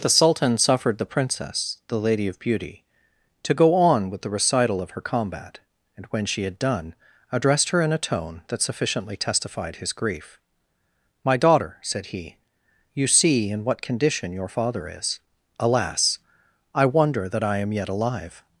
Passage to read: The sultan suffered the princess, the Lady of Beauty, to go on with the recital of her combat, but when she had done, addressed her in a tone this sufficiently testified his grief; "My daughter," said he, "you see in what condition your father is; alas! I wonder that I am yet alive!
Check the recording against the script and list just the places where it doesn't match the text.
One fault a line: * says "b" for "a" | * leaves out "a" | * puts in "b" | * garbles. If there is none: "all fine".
* says "and" for "but"
* says "that" for "this"